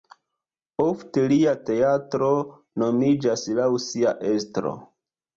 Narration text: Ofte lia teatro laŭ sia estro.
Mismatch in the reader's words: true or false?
true